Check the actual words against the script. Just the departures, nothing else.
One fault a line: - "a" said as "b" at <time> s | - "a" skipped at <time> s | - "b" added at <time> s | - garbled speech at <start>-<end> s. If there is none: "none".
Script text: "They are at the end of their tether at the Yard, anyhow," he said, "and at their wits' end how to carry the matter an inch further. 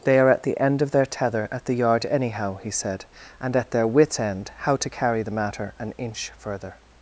none